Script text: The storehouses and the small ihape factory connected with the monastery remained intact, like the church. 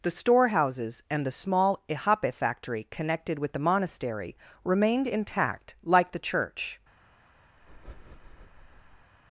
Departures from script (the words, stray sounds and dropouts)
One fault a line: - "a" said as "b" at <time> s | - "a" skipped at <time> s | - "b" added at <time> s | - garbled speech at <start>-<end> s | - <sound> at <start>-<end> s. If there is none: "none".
- breath at 7.6-9.1 s